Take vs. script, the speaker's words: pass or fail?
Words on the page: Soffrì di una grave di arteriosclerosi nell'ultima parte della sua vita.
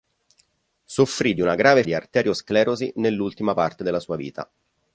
pass